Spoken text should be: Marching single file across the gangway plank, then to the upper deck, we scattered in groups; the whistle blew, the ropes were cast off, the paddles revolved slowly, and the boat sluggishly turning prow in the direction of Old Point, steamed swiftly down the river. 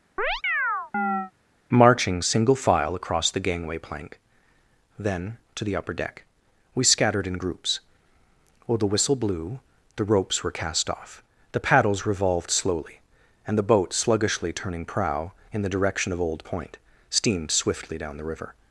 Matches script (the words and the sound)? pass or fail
fail